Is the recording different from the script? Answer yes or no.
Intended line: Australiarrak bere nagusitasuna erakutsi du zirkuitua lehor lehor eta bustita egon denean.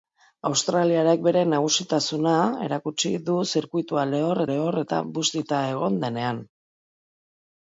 no